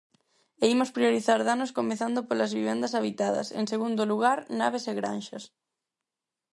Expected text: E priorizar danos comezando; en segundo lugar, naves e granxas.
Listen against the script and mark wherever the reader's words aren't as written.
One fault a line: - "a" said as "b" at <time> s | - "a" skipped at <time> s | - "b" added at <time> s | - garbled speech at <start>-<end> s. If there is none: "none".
- "imos" added at 0.8 s
- "polas vivendas habitadas" added at 2.3 s